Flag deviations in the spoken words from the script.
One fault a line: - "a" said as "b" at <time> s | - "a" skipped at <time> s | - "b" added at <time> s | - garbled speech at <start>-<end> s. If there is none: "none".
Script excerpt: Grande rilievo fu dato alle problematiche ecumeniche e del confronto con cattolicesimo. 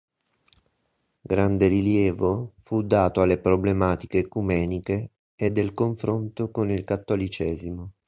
- "il" added at 6.7 s